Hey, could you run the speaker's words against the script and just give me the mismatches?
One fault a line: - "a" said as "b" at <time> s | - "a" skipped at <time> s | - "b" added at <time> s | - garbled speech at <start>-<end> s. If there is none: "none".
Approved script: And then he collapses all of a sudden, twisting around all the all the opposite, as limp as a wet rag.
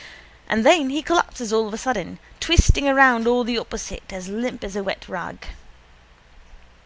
- "all the" skipped at 3.6 s